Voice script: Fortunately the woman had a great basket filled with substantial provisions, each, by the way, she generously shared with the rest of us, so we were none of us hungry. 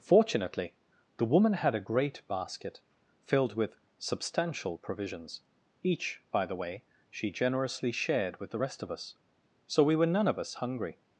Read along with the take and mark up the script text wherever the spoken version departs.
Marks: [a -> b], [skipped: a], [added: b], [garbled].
Fortunately the woman had a great basket filled with substantial provisions, each, by the way, she generously shared with the rest of us, so we were none of us hungry.